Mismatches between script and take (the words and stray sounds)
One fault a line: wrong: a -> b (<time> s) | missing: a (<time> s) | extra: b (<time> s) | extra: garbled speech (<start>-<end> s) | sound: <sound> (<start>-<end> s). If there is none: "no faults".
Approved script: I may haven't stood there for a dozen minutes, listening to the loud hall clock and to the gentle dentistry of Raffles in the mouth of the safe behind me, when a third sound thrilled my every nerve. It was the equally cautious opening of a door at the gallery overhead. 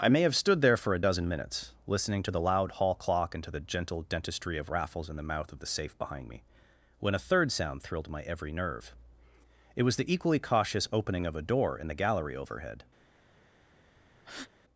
wrong: haven't -> have (0.2 s)
wrong: at -> in (11.8 s)
sound: breath (14.2-14.5 s)